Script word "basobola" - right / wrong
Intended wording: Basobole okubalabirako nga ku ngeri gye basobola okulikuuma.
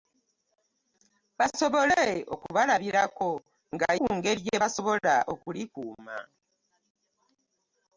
right